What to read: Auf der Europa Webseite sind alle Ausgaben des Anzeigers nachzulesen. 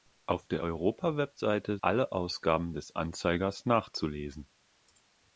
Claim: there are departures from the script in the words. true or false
true